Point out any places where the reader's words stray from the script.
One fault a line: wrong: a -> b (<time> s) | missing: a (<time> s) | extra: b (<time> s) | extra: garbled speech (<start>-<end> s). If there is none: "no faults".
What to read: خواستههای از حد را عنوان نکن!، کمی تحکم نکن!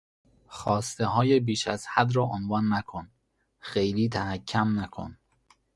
extra: بیش (1.4 s)
wrong: کمی -> خیلی (3.6 s)